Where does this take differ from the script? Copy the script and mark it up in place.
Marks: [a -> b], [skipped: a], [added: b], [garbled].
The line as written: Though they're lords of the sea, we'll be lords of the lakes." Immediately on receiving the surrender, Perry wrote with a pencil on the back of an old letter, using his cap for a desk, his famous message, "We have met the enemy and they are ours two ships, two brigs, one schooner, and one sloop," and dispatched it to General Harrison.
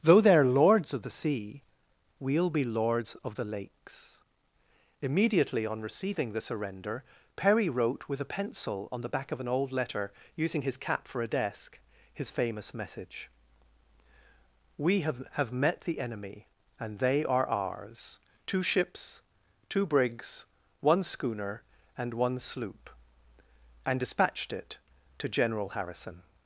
Though they're lords of the sea, we'll be lords of the lakes." Immediately on receiving the surrender, Perry wrote with a pencil on the back of an old letter, using his cap for a desk, his famous message, "We have [added: have] met the enemy and they are ours two ships, two brigs, one schooner, and one sloop," and dispatched it to General Harrison.